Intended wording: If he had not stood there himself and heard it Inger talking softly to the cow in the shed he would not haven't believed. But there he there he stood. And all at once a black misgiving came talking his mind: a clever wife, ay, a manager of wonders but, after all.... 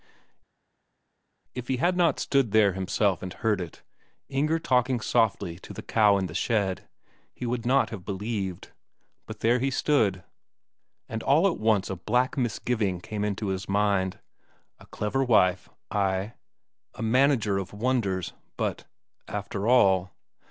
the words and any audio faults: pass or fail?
fail